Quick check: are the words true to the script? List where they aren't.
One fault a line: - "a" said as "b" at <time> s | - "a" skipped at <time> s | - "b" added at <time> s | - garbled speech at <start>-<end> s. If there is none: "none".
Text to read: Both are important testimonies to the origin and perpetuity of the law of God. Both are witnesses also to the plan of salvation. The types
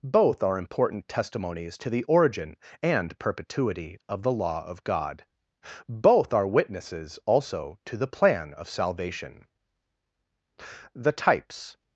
none